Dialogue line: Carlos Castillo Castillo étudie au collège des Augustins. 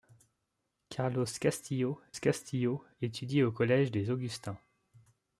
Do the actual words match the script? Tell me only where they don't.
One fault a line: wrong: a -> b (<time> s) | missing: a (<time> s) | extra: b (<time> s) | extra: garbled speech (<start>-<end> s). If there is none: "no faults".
no faults